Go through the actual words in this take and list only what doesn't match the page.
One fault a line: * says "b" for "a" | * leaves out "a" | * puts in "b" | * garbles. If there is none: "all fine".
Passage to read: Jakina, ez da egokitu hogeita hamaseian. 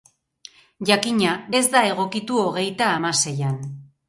all fine